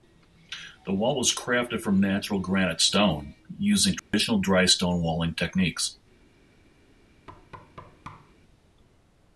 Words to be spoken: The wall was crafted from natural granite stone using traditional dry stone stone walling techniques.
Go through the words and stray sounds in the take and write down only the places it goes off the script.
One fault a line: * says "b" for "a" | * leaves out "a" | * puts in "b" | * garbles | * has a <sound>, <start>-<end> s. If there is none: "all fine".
* has a dropout, 4.0-4.1 s
* leaves out "stone"
* has a thud, 7.3-8.4 s